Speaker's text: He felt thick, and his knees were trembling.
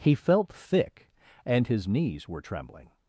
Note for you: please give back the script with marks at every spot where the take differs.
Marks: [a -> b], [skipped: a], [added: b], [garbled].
He felt thick, and his knees were trembling.